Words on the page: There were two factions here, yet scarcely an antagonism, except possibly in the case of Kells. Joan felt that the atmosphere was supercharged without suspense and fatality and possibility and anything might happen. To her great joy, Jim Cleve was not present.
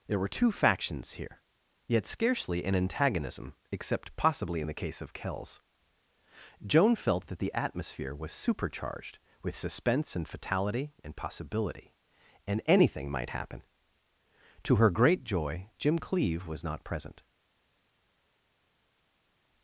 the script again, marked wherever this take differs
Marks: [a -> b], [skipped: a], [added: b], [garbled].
There were two factions here, yet scarcely an antagonism, except possibly in the case of Kells. Joan felt that the atmosphere was supercharged [without -> with] suspense and fatality and possibility and anything might happen. To her great joy, Jim Cleve was not present.